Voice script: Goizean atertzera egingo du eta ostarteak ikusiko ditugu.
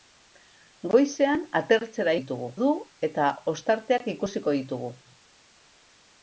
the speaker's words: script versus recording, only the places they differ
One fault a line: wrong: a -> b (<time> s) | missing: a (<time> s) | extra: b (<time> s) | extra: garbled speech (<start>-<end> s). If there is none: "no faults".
wrong: egingo -> ditugu (2.2 s)